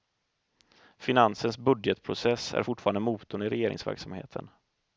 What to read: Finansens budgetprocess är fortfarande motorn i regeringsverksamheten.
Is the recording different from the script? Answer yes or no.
no